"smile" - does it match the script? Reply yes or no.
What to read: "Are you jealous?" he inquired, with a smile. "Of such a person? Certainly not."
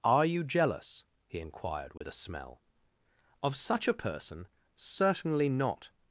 no